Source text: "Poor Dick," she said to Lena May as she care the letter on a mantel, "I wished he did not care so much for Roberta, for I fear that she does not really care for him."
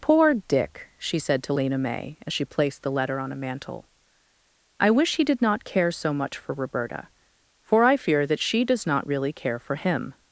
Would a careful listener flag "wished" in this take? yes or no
yes